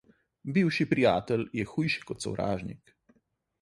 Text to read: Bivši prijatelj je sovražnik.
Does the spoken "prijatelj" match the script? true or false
true